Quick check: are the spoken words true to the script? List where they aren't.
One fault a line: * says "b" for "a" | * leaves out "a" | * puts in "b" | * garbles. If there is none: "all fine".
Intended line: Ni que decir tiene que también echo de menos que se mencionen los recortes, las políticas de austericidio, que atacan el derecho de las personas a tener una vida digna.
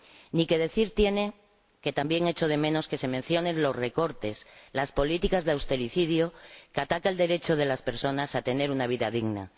all fine